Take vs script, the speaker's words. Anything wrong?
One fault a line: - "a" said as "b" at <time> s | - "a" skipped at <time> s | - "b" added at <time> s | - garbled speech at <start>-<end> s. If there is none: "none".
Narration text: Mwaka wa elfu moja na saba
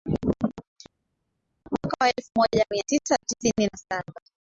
- "mia tisa tisini" added at 2.7 s